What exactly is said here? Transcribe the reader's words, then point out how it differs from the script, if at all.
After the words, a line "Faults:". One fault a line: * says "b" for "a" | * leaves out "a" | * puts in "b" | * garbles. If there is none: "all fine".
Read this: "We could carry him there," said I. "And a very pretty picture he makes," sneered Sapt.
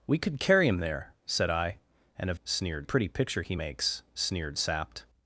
"We could carry him there," said I. "And a sneered pretty picture he makes," sneered Sapt.
Faults:
* says "sneered" for "very"